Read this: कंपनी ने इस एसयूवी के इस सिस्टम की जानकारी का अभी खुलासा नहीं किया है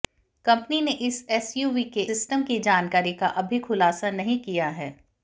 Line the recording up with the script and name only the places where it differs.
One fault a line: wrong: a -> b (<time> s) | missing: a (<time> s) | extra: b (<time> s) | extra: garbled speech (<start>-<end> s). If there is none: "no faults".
missing: इस (2.0 s)